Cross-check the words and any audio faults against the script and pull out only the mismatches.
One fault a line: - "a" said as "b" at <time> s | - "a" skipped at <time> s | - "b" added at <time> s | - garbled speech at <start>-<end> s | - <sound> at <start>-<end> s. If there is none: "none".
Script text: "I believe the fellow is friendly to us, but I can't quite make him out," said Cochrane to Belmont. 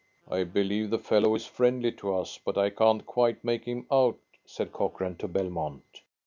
none